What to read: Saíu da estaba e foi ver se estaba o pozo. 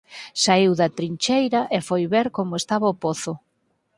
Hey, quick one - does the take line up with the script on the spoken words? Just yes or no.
no